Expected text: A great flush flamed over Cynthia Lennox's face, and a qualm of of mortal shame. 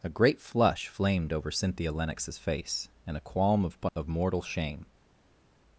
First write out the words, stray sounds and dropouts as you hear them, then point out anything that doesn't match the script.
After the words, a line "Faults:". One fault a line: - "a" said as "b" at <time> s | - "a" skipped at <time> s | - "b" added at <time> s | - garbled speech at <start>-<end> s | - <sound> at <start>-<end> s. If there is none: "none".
A great flush flamed over Cynthia Lennox's face, and a qualm of of mortal shame.
Faults:
none